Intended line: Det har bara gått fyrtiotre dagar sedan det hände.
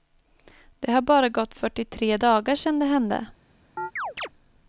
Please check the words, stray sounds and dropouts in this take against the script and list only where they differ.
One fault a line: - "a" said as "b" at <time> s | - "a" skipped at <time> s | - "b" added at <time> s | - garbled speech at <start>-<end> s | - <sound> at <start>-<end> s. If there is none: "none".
- chirp at 3.8-4.3 s